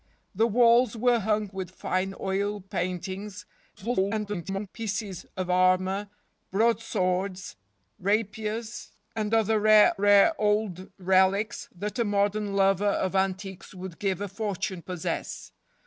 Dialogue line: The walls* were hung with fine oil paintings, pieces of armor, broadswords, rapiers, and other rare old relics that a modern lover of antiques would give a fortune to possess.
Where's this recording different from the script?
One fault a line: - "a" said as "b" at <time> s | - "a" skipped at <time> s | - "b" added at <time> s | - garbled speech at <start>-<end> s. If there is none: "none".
- garbled speech at 3.8-4.7 s
- "rare" added at 10.0 s
- "to" skipped at 14.8 s